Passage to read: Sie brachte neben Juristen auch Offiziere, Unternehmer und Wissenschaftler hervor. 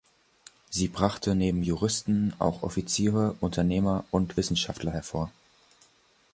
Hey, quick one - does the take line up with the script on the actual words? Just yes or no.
yes